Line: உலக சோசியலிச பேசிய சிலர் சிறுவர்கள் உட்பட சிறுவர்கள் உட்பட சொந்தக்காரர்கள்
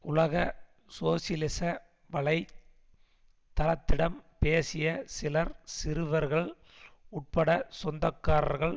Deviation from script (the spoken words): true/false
true